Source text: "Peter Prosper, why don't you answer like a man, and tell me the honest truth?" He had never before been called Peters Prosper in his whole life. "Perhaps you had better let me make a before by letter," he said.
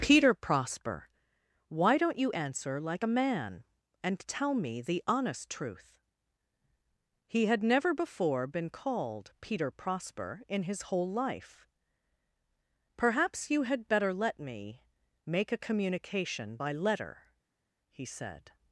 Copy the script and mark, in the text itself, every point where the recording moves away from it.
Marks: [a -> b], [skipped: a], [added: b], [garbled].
"Peter Prosper, why don't you answer like a man, and tell me the honest truth?" He had never before been called [Peters -> Peter] Prosper in his whole life. "Perhaps you had better let me make a [before -> communication] by letter," he said.